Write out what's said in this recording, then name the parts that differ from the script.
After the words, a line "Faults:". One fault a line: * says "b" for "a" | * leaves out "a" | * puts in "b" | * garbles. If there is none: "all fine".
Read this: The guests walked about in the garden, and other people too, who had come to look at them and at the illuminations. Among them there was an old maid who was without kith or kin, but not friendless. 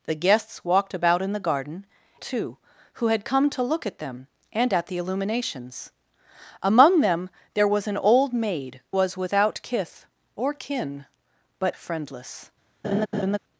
The guests walked about in the garden, too, who had come to look at them and at the illuminations. Among them there was an old maid was without kith or kin, but friendless.
Faults:
* leaves out "and other people"
* leaves out "who"
* leaves out "not"